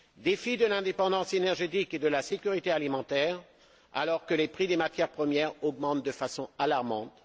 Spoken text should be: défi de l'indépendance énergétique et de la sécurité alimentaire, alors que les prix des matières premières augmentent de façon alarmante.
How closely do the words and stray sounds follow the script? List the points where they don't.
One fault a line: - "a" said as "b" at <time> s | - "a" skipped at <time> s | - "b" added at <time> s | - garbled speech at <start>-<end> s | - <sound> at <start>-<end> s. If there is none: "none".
none